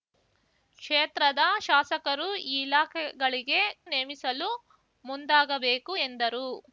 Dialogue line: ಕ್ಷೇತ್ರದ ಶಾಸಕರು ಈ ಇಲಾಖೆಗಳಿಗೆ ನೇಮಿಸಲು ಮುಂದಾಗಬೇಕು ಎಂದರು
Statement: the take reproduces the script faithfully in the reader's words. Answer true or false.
true